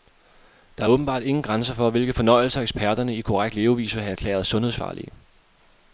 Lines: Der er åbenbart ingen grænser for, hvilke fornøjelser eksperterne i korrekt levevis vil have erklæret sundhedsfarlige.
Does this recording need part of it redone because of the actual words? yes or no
no